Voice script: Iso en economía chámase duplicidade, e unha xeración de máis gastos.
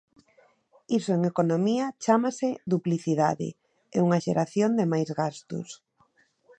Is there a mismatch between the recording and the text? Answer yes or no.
no